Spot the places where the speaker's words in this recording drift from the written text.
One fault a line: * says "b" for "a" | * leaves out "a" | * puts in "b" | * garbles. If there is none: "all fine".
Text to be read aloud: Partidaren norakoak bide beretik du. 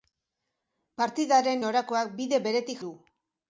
all fine